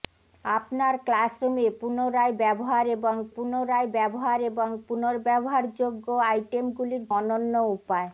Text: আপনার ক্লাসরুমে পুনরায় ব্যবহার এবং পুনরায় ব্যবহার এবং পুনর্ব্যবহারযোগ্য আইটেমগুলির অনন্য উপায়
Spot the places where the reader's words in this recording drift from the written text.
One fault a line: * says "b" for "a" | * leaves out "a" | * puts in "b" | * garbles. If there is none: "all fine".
all fine